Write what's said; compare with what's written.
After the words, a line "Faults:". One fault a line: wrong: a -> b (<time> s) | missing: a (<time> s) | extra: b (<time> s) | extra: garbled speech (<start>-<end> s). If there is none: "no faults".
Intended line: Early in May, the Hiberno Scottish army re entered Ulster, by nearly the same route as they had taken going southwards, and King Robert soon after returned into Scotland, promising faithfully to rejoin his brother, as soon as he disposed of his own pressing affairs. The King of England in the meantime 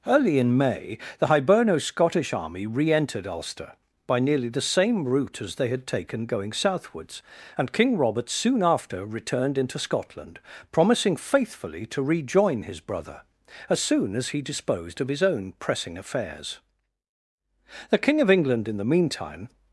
Early in May, the Hiberno Scottish army re entered Ulster, by nearly the same route as they had taken going southwards, and King Robert soon after returned into Scotland, promising faithfully to rejoin his brother, as soon as he disposed of his own pressing affairs. The King of England in the meantime
Faults:
no faults